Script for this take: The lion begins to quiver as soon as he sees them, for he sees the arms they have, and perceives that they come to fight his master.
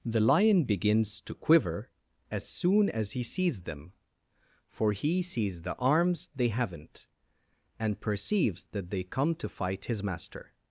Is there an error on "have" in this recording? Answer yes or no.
yes